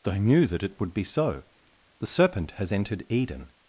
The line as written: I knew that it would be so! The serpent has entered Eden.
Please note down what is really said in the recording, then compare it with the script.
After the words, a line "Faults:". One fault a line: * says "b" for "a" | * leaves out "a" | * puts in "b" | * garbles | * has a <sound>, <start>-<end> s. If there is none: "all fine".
they knew that it would be so! The serpent has entered Eden.
Faults:
* says "they" for "I"